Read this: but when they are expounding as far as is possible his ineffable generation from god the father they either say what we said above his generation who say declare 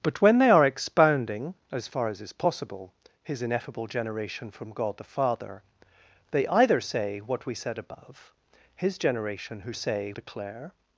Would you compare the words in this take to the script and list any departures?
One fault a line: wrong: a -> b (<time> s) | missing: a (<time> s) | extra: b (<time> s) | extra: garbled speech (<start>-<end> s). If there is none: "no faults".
no faults